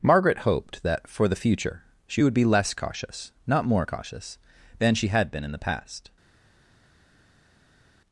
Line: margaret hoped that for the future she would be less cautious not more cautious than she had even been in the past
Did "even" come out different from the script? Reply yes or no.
yes